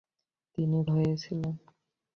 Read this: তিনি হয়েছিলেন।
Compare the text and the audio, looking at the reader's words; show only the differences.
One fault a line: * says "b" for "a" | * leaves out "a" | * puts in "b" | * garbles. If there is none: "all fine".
all fine